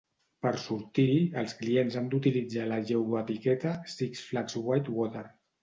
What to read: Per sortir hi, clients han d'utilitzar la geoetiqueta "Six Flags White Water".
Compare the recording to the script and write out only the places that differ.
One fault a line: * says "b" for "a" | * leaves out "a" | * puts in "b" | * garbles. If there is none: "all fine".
* puts in "els"